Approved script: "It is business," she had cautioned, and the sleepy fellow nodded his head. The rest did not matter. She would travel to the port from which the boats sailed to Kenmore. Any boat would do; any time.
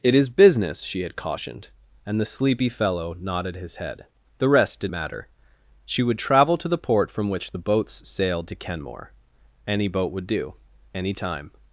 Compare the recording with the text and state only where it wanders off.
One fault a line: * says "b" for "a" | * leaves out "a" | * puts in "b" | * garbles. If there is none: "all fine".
* leaves out "not"